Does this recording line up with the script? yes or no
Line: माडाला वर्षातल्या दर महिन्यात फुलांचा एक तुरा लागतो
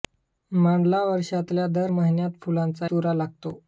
no